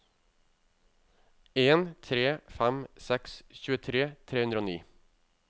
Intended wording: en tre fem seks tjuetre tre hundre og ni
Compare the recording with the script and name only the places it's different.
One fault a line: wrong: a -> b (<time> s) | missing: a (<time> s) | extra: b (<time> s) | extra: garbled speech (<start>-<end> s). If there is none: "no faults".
no faults